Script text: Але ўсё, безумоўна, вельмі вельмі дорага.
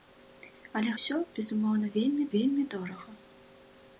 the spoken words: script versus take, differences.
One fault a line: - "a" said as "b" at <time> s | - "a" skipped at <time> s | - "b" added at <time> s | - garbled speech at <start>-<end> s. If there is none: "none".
none